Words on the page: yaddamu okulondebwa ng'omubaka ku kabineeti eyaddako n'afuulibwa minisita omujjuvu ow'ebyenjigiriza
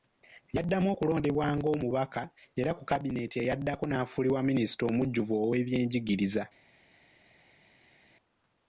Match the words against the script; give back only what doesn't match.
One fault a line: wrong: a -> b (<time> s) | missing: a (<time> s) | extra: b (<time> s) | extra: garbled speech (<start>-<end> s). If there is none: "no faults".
extra: era (2.6 s)